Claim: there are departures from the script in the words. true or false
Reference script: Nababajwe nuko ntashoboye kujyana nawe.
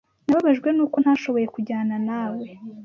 false